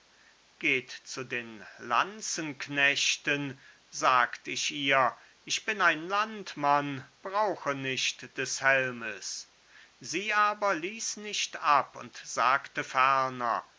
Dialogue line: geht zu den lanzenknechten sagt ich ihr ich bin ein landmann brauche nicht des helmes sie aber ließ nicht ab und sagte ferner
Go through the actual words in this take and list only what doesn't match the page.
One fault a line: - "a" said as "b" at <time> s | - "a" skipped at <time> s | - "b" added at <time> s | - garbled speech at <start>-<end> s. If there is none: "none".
none